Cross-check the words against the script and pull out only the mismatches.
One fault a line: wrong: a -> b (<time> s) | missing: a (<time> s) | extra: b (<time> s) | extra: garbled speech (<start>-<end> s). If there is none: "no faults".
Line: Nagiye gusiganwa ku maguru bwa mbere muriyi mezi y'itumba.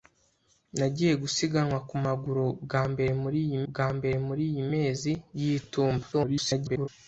extra: bwa mbere muriyi (3.7 s)
extra: garbled speech (6.1-6.9 s)